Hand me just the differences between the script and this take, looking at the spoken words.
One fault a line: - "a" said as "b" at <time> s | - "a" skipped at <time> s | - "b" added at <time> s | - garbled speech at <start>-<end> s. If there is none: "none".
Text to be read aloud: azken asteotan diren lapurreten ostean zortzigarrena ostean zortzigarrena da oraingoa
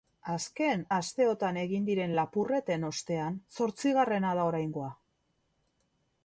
- "egin" added at 1.6 s
- "ostean zortzigarrena" skipped at 4.3 s